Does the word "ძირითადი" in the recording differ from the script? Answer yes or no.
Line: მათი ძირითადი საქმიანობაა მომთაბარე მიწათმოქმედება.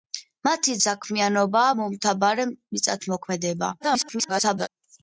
yes